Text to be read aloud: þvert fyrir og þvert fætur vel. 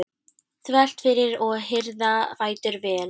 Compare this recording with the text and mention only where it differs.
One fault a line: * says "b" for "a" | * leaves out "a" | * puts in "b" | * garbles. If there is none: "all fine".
* says "hirða" for "þvert"